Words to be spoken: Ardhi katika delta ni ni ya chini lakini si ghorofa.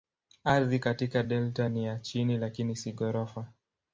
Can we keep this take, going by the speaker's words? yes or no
no